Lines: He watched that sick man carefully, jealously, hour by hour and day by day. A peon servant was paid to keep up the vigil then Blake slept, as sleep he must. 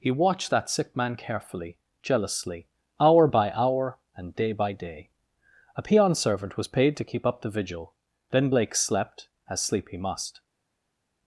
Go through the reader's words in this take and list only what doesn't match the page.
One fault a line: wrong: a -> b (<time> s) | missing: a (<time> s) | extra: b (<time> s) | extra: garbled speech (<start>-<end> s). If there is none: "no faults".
no faults